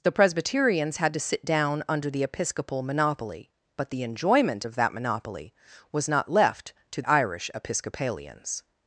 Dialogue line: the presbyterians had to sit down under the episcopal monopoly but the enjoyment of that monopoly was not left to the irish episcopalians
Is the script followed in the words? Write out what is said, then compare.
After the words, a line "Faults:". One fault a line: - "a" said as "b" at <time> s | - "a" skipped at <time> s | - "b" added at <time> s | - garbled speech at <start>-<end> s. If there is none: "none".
the presbyterians had to sit down under the episcopal monopoly but the enjoyment of that monopoly was not left to irish episcopalians
Faults:
- "the" skipped at 7.0 s